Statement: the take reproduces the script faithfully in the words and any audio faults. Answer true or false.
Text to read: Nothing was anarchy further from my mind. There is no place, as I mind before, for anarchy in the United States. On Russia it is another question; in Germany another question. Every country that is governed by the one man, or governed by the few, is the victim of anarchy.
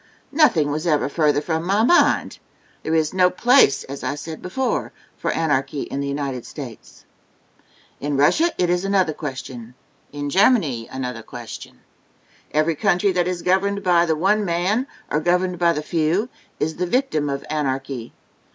false